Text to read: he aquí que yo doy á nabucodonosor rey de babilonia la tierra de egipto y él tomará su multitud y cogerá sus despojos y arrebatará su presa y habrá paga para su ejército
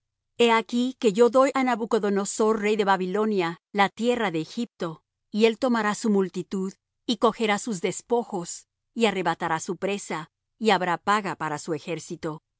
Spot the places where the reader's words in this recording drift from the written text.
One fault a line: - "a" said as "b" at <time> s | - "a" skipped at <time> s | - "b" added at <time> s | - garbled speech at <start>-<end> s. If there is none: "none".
none